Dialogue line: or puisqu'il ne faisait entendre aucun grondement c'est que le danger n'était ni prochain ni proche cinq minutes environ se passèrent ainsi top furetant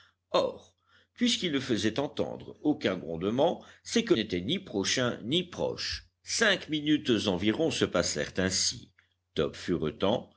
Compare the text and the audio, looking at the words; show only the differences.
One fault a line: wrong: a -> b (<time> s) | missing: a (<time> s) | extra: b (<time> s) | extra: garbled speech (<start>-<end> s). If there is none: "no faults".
missing: le danger (4.1 s)